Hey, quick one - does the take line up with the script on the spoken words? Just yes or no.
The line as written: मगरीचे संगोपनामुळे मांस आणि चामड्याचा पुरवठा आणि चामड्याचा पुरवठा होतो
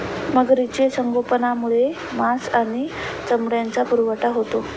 no